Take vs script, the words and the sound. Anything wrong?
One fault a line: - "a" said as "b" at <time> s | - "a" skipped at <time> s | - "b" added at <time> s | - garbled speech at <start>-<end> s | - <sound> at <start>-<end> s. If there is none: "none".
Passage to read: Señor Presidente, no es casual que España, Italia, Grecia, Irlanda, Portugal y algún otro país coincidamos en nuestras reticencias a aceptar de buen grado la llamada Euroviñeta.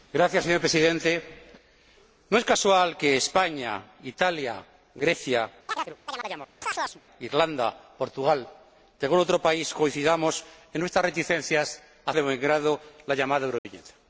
- chirp at 5.7-7.0 s
- "aceptar" skipped at 12.1 s
- dropout at 13.6-13.7 s